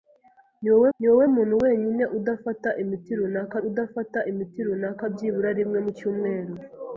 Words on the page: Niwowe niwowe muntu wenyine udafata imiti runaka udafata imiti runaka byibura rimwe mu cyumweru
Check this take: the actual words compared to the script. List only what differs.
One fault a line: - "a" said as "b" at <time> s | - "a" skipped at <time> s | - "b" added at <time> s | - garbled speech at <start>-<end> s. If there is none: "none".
none